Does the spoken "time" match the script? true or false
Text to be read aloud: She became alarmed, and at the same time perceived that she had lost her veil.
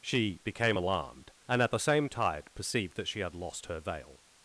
false